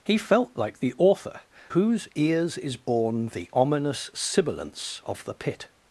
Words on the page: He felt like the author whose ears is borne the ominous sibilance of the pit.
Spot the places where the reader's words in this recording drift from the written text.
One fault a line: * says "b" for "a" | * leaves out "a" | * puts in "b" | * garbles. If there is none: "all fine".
all fine